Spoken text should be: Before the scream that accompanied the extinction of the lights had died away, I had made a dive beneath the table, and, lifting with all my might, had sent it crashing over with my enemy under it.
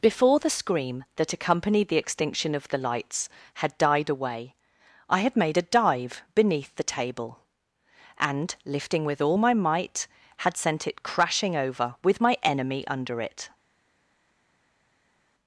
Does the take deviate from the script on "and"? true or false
false